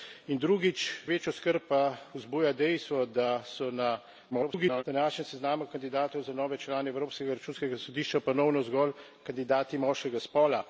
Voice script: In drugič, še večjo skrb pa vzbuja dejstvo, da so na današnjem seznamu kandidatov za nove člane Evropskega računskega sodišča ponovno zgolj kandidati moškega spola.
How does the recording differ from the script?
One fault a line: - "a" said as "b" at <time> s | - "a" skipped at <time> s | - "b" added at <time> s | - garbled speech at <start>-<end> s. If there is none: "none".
- "še" skipped at 0.8 s
- garbled speech at 4.3-4.8 s